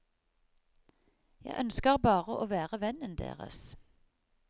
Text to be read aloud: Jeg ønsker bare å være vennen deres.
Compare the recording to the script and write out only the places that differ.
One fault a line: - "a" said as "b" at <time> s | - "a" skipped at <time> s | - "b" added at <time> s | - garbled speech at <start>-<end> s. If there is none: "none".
none